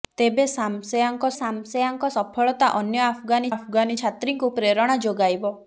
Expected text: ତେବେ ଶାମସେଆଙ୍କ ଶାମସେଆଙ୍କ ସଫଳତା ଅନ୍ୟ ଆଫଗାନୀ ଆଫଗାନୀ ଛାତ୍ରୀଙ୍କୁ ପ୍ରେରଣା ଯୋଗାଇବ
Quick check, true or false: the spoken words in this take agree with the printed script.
true